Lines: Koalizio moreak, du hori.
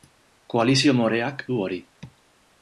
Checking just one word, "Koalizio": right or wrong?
right